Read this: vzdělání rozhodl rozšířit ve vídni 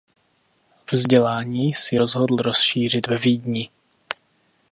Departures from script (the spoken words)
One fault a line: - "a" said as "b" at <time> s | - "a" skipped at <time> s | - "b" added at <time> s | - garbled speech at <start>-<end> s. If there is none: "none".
- "si" added at 1.7 s